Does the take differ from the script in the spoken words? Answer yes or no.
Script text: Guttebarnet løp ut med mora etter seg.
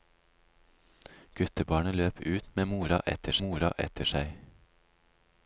yes